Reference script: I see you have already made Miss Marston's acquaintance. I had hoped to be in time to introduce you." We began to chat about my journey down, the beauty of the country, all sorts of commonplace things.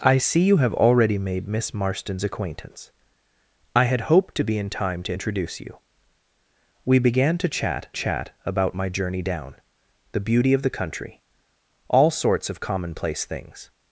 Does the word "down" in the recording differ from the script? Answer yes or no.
no